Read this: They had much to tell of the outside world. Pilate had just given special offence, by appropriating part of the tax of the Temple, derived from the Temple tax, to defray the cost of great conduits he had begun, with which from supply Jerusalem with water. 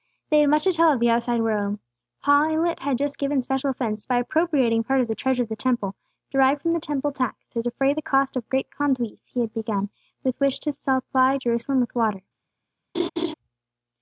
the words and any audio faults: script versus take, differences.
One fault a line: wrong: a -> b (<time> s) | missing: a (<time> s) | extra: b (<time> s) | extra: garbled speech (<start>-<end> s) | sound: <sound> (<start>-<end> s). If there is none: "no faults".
wrong: tax -> treasure (5.2 s)
wrong: from -> to (10.6 s)
sound: laugh (12.9-13.3 s)